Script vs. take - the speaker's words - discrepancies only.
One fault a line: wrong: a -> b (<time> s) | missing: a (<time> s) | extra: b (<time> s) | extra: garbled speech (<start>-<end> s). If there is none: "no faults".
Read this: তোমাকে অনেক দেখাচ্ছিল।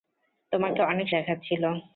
no faults